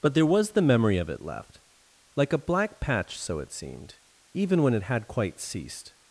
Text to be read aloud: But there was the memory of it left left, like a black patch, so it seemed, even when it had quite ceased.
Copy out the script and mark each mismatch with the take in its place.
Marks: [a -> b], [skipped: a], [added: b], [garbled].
But there was the memory of it left [skipped: left,] like a black patch, so it seemed, even when it had quite ceased.